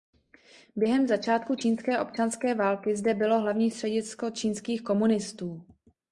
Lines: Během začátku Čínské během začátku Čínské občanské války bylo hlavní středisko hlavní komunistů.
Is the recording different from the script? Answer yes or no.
yes